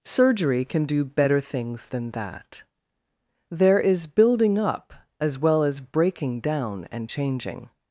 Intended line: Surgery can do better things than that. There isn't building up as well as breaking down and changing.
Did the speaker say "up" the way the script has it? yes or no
yes